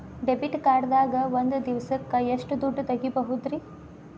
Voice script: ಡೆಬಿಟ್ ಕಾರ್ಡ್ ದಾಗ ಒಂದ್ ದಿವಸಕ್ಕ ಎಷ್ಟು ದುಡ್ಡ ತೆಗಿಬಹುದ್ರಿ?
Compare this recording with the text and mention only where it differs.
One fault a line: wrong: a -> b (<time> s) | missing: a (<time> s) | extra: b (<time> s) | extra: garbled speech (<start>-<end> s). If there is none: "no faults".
no faults